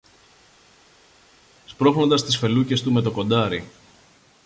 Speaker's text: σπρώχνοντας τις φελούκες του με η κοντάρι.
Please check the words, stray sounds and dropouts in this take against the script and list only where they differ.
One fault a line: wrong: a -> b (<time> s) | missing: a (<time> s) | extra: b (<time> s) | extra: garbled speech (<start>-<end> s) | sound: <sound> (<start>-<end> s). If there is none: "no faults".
wrong: η -> το (3.0 s)